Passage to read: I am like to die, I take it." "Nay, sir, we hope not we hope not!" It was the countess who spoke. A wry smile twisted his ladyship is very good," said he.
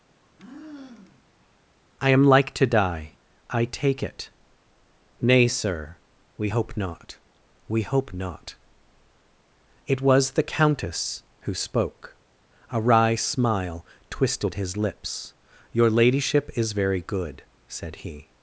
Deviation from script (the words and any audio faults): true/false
true